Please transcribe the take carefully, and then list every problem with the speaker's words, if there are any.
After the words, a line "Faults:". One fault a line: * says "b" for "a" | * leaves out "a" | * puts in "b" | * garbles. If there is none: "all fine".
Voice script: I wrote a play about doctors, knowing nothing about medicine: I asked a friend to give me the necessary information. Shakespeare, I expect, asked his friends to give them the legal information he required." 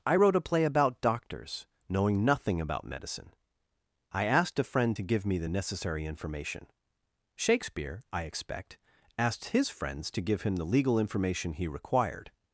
I wrote a play about doctors, knowing nothing about medicine: I asked a friend to give me the necessary information. Shakespeare, I expect, asked his friends to give him the legal information he required."
Faults:
* says "him" for "them"